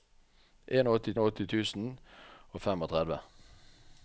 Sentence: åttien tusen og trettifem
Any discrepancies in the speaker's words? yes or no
yes